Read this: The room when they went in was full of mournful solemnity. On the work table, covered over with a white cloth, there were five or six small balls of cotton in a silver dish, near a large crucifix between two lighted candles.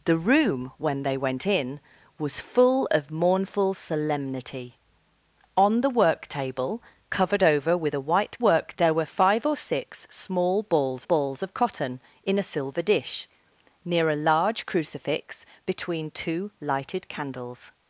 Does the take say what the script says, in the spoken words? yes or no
no